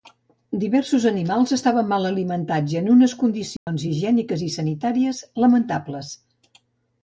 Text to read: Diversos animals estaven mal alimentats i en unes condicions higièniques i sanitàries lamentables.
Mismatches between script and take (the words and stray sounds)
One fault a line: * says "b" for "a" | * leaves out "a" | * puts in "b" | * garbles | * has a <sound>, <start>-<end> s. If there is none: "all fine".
* has a dropout, 3.6-3.7 s